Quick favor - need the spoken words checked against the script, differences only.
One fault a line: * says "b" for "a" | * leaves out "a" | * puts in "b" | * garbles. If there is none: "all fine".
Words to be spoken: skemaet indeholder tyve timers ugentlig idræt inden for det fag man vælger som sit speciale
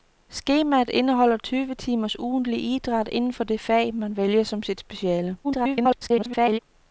* garbles